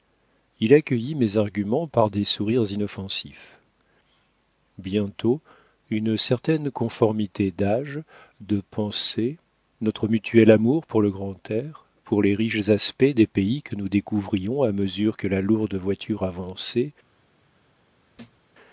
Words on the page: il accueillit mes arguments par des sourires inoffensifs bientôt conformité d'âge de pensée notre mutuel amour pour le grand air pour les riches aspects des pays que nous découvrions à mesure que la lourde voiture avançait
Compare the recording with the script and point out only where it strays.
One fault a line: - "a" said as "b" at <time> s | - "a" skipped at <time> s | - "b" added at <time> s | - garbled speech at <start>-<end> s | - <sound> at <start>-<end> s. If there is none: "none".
- "une certaine" added at 5.9 s
- thud at 18.1-18.5 s